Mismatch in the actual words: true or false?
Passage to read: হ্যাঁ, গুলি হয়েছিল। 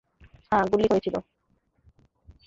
false